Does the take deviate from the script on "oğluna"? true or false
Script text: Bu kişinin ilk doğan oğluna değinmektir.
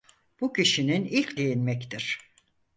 true